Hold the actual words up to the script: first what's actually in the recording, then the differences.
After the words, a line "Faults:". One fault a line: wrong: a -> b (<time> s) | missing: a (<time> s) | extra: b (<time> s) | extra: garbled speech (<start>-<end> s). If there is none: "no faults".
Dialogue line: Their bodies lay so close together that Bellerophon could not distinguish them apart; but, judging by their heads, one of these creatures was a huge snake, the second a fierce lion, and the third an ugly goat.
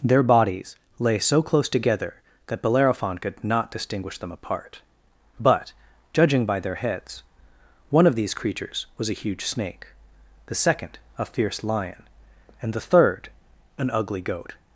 Their bodies lay so close together that Bellerophon could not distinguish them apart; but, judging by their heads, one of these creatures was a huge snake, the second a fierce lion, and the third an ugly goat.
Faults:
no faults